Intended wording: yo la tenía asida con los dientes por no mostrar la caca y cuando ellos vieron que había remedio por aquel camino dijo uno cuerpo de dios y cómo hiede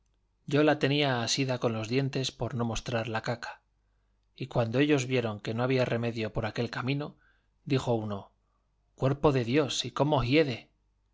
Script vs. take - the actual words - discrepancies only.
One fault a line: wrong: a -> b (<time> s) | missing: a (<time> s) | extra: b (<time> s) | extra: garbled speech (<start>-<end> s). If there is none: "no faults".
extra: no (5.5 s)